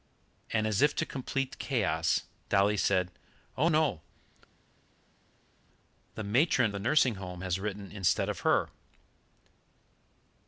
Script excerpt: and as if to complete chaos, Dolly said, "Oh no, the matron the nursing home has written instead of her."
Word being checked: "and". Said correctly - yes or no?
yes